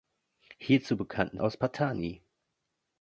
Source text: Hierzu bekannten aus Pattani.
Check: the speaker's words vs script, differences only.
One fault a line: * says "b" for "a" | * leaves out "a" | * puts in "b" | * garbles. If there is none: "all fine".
all fine